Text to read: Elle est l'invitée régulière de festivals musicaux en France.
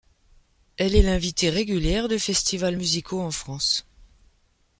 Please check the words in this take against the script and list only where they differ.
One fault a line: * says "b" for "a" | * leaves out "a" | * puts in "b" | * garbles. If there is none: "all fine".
all fine